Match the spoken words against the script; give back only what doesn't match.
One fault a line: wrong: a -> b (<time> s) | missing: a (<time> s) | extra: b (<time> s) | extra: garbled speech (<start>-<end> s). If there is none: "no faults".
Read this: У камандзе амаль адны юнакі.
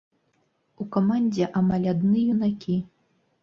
no faults